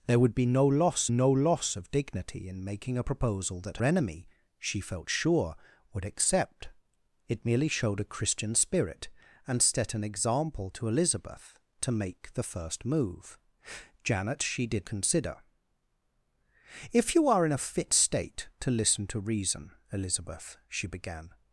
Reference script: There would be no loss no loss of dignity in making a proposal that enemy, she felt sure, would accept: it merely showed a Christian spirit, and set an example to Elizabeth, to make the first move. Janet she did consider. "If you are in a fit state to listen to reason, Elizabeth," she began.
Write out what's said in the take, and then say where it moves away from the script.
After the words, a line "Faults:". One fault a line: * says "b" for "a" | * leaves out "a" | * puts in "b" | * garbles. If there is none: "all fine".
There would be no loss no loss of dignity in making a proposal that enemy, she felt sure, would accept: it merely showed a Christian spirit, and set an example to Elizabeth, to make the first move. Janet she did consider. "If you are in a fit state to listen to reason, Elizabeth," she began.
Faults:
all fine